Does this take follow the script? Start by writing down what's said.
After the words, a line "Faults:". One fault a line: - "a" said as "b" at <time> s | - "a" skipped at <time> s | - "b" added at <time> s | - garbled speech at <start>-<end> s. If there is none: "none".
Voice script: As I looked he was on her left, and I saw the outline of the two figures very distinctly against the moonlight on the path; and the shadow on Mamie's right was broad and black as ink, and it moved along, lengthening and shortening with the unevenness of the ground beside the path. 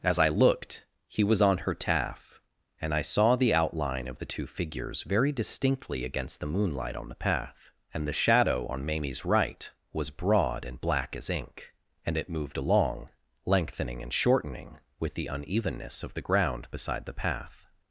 As I looked he was on her taff, and I saw the outline of the two figures very distinctly against the moonlight on the path; and the shadow on Mamie's right was broad and black as ink, and it moved along, lengthening and shortening with the unevenness of the ground beside the path.
Faults:
- "left" said as "taff" at 1.8 s